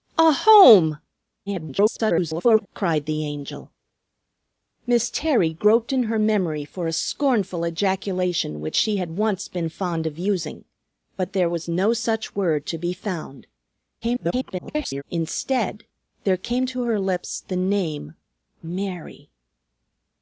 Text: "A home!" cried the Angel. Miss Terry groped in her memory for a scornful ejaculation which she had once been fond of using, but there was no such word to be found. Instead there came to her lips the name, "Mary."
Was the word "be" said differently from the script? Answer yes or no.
no